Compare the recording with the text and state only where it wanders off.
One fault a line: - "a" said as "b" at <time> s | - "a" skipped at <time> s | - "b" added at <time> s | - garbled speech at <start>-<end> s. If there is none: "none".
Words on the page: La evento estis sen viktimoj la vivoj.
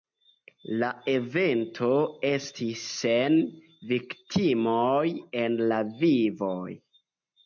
- "en" added at 5.4 s